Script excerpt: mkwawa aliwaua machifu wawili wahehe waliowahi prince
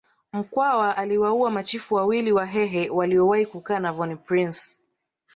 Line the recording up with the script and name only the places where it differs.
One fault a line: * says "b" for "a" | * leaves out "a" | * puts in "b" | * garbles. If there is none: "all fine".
* puts in "kukaa na von"